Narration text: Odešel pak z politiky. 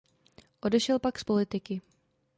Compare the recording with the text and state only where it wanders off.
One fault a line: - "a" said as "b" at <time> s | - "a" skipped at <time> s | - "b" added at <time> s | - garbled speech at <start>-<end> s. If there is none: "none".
none